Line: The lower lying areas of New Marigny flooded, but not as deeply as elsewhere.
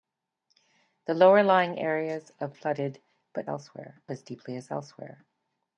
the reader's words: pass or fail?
fail